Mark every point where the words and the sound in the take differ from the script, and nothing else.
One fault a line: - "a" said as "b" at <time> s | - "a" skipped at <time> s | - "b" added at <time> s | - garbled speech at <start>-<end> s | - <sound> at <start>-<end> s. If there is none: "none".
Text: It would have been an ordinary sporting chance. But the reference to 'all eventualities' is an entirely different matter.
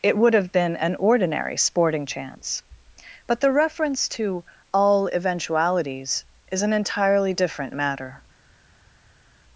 none